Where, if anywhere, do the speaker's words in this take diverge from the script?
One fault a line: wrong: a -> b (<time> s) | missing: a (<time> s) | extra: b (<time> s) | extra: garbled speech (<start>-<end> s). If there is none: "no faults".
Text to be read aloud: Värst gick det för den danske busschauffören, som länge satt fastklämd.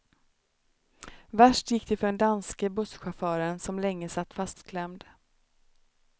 no faults